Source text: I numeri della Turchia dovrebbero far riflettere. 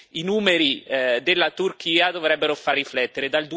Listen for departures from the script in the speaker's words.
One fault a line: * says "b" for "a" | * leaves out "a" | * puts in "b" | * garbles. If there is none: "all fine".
all fine